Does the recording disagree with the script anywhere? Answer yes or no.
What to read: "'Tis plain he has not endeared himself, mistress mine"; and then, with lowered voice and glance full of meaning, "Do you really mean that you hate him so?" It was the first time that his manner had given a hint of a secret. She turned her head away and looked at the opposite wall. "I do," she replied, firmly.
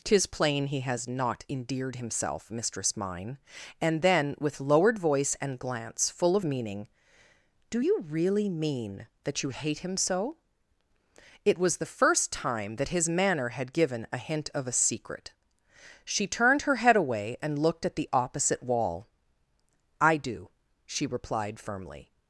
no